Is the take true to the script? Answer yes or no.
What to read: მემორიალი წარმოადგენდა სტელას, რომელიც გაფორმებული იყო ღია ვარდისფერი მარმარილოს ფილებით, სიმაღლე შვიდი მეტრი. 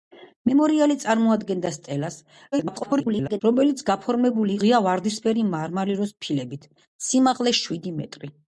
no